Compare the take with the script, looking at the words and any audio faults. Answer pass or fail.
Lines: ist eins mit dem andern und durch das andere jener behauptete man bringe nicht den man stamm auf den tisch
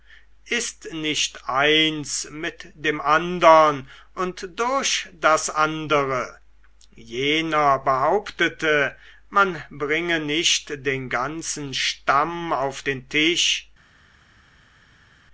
fail